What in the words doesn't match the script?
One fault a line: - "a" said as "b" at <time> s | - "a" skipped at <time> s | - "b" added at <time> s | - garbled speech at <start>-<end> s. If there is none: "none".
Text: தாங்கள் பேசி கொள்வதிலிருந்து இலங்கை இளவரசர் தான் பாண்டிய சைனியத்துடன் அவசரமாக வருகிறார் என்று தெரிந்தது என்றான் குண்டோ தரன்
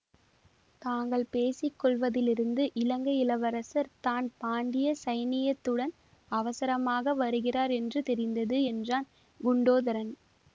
none